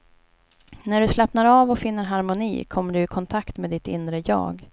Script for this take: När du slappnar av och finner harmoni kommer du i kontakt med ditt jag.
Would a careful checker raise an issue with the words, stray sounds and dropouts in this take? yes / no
yes